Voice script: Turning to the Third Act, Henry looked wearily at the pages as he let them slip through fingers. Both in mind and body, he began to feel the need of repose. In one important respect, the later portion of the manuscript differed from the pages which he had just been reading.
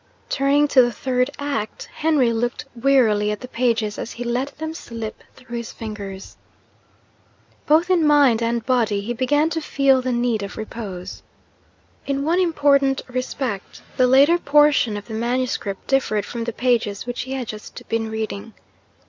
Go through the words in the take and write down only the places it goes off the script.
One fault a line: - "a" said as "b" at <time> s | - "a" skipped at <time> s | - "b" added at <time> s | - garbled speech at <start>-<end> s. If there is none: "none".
- "his" added at 5.6 s